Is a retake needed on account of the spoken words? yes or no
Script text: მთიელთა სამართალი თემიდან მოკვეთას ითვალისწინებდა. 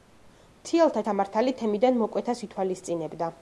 no